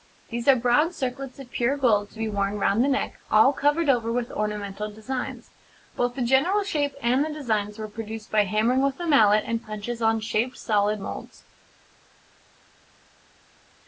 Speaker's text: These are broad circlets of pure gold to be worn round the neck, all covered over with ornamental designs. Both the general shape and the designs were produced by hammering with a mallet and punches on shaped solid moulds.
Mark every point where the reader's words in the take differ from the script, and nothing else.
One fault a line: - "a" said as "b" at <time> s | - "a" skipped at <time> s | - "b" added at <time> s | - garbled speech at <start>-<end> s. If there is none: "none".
none